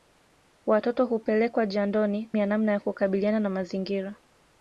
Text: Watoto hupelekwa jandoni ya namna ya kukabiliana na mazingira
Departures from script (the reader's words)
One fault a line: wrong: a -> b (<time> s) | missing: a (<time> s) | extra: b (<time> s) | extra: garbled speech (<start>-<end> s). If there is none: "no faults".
no faults